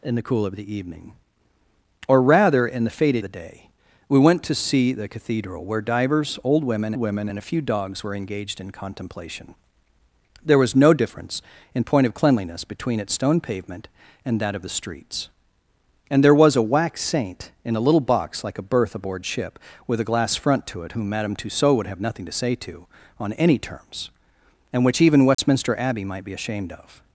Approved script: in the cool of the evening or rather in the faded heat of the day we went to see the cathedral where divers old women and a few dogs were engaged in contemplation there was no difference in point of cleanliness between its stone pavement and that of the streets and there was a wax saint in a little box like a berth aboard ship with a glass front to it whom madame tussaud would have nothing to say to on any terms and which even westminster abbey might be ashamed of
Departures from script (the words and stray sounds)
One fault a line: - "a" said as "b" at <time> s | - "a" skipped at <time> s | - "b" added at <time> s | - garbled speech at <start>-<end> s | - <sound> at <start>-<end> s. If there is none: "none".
- "heat of" skipped at 3.2 s
- "women" added at 7.0 s
- dropout at 25.3-25.4 s